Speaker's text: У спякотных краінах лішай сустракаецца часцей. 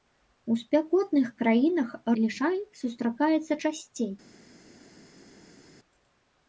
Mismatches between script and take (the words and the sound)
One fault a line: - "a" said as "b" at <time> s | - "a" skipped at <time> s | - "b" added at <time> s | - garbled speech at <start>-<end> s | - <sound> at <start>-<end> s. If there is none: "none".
none